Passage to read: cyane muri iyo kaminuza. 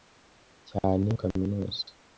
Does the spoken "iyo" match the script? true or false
false